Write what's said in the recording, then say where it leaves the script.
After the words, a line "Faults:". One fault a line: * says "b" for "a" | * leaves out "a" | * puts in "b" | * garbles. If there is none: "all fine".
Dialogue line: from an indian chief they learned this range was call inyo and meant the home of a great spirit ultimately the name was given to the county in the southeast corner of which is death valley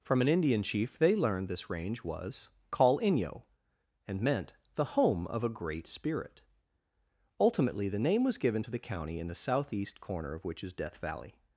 from an indian chief they learned this range was call inyo and meant the home of a great spirit ultimately the name was given to the county in the southeast corner of which is death valley
Faults:
all fine